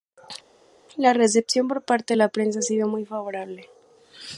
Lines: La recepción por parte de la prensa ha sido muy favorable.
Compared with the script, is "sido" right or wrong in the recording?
right